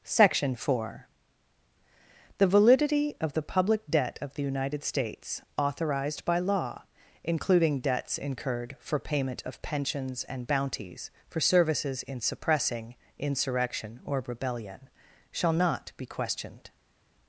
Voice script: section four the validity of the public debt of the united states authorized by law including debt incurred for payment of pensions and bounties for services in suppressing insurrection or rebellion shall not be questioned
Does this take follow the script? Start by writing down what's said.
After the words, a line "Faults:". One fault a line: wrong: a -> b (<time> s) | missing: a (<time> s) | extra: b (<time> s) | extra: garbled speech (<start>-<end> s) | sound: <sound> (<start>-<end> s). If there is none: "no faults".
section four the validity of the public debt of the united states authorized by law including debts incurred for payment of pensions and bounties for services in suppressing insurrection or rebellion shall not be questioned
Faults:
wrong: debt -> debts (7.8 s)